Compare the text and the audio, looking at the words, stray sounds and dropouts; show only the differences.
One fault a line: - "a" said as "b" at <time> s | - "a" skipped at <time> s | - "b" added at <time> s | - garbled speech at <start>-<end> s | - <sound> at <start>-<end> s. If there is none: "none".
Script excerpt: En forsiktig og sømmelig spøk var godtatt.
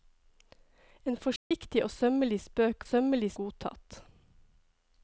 - dropout at 1.4-1.5 s
- "var" said as "sømmelig" at 2.8 s